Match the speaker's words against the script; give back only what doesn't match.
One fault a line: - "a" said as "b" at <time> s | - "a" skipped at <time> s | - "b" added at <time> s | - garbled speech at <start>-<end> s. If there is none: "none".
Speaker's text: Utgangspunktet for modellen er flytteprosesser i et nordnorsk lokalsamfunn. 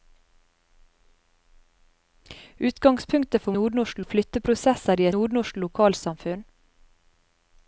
- "modellen" said as "nordnorsk" at 3.6 s
- "et" skipped at 5.1 s